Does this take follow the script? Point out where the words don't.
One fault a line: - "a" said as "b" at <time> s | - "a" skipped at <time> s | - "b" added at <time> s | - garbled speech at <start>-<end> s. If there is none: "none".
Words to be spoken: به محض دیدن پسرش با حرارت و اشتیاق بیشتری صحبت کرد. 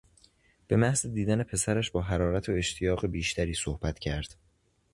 none